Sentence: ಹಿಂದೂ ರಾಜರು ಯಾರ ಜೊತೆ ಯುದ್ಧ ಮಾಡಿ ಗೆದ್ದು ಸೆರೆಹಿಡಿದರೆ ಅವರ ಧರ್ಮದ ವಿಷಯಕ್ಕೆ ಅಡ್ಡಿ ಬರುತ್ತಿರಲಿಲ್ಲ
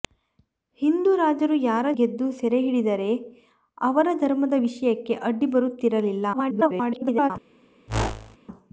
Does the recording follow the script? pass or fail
fail